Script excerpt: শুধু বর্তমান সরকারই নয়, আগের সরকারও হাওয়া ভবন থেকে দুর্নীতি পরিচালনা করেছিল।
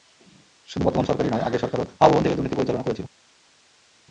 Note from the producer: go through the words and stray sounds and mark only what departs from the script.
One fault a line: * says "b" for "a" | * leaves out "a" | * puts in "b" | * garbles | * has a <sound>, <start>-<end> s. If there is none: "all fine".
all fine